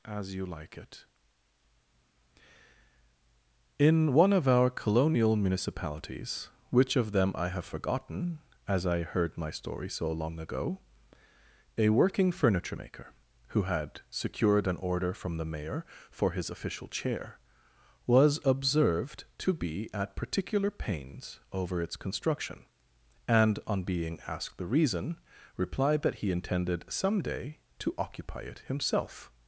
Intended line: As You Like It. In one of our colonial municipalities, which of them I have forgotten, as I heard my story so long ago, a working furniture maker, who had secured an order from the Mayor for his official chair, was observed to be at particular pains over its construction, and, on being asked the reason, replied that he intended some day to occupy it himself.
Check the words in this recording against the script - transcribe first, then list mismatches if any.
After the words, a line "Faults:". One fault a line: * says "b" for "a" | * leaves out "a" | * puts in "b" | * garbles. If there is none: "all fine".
As You Like It. In one of our colonial municipalities, which of them I have forgotten, as I heard my story so long ago, a working furniture maker, who had secured an order from the Mayor for his official chair, was observed to be at particular pains over its construction, and, on being asked the reason, replied that he intended some day to occupy it himself.
Faults:
all fine